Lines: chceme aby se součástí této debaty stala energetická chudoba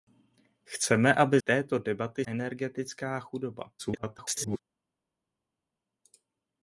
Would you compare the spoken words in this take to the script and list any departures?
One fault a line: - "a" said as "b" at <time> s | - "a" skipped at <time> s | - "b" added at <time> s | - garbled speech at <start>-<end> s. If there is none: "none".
- "se součástí" skipped at 1.4 s
- "stala" skipped at 2.3 s
- garbled speech at 3.8-4.6 s